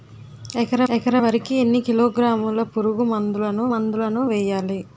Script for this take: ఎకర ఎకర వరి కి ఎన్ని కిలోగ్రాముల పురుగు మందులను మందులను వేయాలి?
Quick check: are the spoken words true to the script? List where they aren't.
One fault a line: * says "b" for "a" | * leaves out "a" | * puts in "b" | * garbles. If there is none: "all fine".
all fine